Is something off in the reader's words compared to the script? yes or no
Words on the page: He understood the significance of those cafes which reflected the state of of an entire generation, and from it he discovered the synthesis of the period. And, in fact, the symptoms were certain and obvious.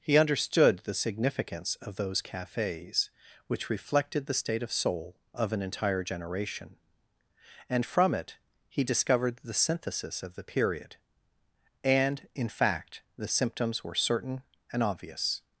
yes